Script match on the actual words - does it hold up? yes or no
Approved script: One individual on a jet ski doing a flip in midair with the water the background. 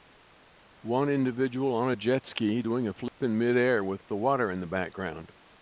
no